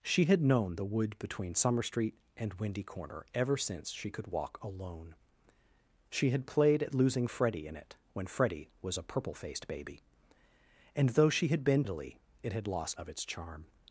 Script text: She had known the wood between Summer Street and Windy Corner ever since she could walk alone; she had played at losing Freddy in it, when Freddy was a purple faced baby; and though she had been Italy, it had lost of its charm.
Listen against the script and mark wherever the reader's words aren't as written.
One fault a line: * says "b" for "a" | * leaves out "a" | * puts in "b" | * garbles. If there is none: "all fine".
all fine